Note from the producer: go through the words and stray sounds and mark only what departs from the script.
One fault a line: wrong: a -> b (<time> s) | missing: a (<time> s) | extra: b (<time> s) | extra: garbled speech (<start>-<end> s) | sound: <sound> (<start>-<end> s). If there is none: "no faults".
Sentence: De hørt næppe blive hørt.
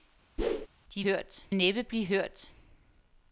sound: whoosh (0.4-0.7 s)